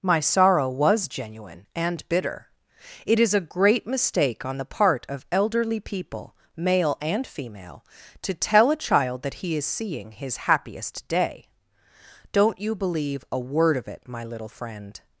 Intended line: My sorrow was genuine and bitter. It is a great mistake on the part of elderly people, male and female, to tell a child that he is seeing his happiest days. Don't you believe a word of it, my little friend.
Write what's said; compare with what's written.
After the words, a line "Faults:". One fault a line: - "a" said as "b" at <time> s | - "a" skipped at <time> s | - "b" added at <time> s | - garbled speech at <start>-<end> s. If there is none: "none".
My sorrow was genuine and bitter. It is a great mistake on the part of elderly people, male and female, to tell a child that he is seeing his happiest day. Don't you believe a word of it, my little friend.
Faults:
- "days" said as "day" at 11.1 s